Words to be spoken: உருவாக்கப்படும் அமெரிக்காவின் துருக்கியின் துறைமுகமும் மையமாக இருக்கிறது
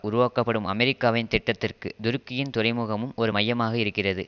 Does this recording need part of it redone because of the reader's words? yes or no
yes